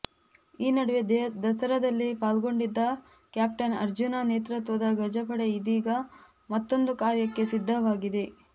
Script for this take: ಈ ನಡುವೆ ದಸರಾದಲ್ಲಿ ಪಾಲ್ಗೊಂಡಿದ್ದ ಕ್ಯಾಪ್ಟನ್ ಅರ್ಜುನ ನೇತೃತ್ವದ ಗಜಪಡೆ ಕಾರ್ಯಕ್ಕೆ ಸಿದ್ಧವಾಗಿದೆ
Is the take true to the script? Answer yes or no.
no